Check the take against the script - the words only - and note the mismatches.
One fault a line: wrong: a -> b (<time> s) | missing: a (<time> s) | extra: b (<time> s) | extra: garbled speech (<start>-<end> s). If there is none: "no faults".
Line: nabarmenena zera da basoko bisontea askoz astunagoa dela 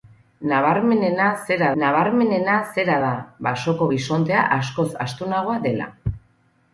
extra: nabarmenena zera (1.8 s)